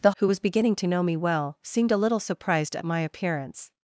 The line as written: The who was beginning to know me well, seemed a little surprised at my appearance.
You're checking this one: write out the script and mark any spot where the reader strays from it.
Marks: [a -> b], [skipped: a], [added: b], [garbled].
The who was beginning to know me well, seemed a little surprised at my appearance.